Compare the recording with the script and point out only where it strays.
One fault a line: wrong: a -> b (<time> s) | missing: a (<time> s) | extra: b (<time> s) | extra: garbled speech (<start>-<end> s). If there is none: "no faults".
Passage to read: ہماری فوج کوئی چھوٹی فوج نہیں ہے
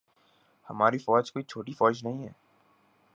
no faults